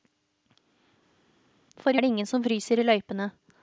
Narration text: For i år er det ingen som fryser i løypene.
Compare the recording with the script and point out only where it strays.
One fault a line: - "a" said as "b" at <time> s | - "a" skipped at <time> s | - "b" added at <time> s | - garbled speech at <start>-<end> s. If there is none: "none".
- "år" skipped at 2.0 s